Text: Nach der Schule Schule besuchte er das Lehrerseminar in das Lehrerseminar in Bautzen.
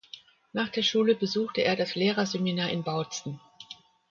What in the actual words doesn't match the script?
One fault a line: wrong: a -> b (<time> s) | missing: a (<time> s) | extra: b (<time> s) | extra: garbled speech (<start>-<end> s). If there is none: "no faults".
missing: Schule (1.1 s)
missing: das Lehrerseminar in (2.8 s)